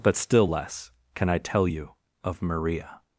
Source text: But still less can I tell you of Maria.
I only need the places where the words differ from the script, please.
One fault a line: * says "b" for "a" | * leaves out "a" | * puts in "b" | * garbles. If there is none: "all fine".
all fine